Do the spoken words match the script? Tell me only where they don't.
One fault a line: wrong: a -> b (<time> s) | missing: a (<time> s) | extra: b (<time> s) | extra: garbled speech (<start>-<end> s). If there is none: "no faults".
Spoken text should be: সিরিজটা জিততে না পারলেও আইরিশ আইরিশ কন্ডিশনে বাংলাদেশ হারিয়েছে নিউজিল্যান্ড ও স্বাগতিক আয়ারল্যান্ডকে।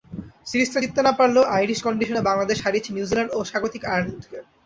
missing: আইরিশ (1.8 s)